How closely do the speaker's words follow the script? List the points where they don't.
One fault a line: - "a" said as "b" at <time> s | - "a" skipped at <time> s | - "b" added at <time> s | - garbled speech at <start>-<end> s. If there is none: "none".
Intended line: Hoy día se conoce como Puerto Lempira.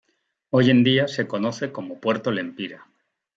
- "en" added at 0.7 s